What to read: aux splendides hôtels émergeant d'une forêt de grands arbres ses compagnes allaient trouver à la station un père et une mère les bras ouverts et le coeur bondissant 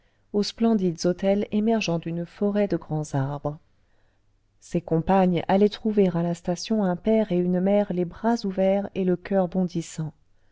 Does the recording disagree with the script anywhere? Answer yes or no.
no